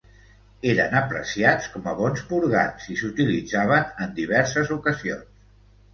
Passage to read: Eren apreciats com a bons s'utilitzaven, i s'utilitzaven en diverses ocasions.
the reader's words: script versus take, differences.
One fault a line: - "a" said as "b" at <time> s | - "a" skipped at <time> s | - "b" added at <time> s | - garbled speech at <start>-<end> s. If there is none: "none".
- "s'utilitzaven" said as "purgants" at 2.3 s